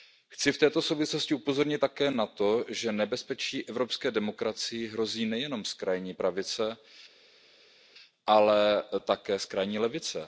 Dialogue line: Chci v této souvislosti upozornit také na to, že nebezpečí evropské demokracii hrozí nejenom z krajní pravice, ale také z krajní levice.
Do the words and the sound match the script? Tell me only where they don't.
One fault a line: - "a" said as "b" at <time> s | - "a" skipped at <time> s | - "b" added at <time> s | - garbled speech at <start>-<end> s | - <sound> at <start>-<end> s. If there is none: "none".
none